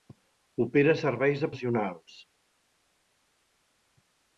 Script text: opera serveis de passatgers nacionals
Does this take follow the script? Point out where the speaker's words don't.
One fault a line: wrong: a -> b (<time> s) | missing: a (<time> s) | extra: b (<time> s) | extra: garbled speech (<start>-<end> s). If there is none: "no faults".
missing: passatgers (1.5 s)